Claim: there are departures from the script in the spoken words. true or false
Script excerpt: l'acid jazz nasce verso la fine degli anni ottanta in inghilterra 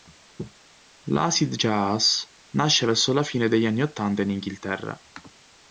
false